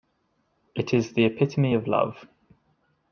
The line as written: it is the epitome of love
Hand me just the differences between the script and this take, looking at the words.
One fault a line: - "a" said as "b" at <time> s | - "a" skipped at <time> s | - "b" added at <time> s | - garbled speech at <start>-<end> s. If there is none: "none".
none